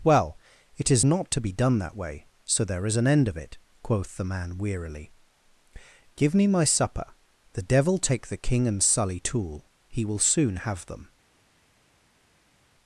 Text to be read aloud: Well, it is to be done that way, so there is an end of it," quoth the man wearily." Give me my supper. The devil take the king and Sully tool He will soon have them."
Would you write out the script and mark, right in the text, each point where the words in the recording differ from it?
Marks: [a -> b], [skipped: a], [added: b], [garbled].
Well, it is [added: not] to be done that way, so there is an end of it," quoth the man wearily." Give me my supper. The devil take the king and Sully tool He will soon have them."